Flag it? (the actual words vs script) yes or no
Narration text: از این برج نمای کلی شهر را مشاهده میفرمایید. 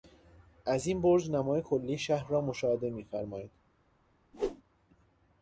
no